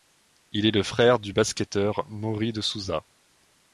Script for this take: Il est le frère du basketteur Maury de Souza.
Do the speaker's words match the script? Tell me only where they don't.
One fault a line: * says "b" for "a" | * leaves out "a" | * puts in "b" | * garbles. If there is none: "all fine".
all fine